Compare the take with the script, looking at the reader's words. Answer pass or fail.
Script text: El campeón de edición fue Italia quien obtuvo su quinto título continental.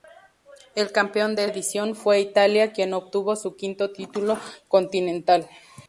pass